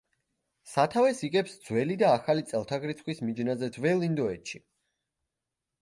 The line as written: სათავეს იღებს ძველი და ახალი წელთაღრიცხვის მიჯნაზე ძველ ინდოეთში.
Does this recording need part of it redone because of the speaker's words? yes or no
no